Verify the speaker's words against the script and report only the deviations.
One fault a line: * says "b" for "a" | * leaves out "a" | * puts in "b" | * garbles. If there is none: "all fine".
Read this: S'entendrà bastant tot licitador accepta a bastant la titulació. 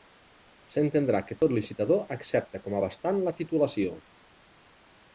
* says "que" for "bastant"
* puts in "com"